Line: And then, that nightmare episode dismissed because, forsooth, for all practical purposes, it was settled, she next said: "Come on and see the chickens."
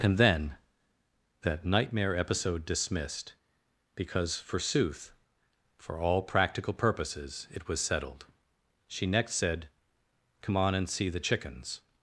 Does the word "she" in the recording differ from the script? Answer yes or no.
no